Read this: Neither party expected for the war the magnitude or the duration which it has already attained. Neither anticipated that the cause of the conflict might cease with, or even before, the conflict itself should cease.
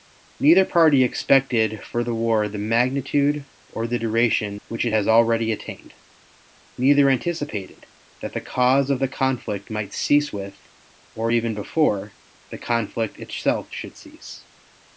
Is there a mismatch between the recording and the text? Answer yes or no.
no